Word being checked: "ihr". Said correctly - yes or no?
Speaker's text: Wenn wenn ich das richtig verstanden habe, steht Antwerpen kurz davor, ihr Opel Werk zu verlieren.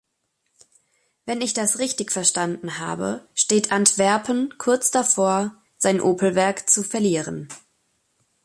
no